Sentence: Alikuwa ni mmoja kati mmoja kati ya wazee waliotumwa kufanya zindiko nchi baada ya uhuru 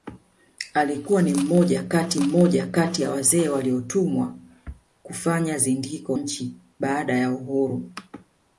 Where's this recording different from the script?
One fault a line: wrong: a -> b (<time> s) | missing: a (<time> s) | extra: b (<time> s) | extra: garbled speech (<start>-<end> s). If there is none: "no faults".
no faults